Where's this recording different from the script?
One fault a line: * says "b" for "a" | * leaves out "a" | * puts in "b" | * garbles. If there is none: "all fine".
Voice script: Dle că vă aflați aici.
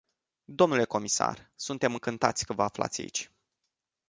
* puts in "comisar suntem încântați"